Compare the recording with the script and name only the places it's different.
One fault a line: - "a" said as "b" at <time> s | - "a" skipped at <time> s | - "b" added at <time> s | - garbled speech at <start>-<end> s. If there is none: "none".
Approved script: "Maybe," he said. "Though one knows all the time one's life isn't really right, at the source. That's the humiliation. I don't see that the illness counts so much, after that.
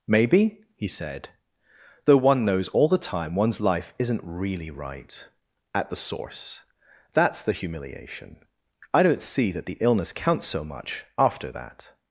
none